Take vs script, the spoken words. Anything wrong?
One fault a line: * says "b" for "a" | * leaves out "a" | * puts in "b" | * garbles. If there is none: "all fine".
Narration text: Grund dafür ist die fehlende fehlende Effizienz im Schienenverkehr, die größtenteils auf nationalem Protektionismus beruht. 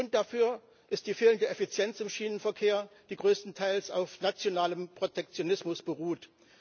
* leaves out "fehlende"